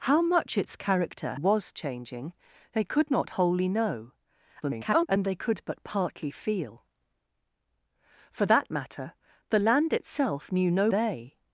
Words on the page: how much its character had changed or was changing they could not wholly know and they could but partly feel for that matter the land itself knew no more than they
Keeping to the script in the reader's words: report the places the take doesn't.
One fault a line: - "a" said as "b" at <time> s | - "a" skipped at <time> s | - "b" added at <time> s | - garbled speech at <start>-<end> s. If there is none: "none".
- "had changed or" skipped at 1.4 s
- garbled speech at 4.6-5.1 s
- "more than" skipped at 10.9 s